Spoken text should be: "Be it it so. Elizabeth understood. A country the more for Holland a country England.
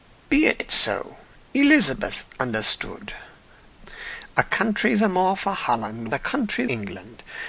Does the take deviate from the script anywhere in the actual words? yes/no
no